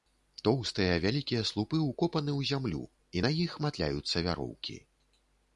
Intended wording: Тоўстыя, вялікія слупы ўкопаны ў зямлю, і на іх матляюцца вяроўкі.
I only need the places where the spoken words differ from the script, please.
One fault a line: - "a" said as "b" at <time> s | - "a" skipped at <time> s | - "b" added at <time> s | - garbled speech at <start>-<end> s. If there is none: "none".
none